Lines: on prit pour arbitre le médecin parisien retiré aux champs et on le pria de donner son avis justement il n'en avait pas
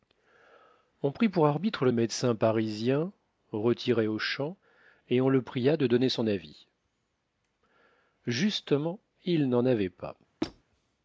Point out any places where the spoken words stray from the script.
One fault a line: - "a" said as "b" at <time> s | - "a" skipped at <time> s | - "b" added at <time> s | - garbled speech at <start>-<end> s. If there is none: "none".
none